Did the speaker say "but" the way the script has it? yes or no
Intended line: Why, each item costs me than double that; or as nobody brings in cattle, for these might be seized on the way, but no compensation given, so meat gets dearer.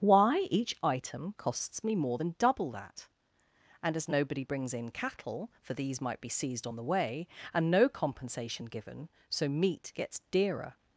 no